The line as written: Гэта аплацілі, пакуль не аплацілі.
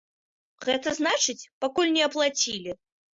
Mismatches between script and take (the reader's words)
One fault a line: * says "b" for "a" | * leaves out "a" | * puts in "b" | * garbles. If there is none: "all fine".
* says "значыць" for "аплацілі"